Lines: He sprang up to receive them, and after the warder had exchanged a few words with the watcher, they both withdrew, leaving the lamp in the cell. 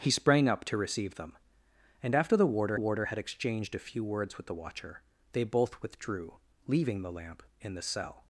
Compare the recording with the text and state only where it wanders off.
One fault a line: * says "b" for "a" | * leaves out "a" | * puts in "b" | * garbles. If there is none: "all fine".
* puts in "warder"